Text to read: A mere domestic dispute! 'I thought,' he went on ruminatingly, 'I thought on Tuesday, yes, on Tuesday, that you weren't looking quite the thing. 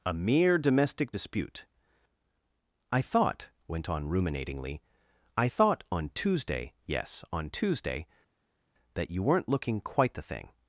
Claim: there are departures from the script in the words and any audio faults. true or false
true